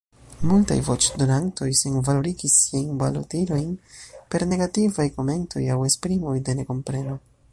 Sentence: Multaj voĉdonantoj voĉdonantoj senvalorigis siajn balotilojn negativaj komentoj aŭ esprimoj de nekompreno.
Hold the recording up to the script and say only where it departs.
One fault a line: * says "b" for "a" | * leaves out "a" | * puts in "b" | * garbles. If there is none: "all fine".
* leaves out "voĉdonantoj"
* puts in "per"